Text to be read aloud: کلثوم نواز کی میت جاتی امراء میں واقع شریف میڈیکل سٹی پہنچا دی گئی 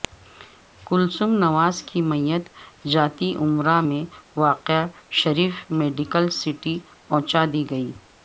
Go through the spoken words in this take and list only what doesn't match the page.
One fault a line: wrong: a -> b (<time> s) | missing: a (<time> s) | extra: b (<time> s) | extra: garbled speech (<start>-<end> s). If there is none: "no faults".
no faults